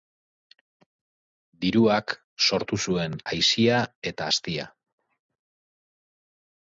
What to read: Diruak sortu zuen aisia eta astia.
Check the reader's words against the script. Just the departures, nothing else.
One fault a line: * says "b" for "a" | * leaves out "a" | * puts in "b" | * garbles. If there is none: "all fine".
all fine